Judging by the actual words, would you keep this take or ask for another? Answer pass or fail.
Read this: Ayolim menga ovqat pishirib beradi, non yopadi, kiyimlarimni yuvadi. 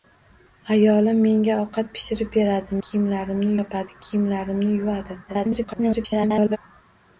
fail